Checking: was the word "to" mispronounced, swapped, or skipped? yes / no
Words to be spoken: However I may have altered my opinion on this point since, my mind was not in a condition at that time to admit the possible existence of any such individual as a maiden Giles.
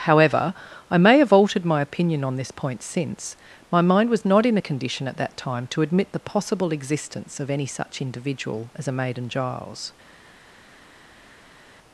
no